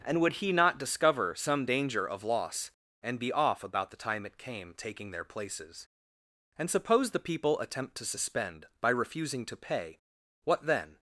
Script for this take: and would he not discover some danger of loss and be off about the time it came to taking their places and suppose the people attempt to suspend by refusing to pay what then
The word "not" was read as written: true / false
true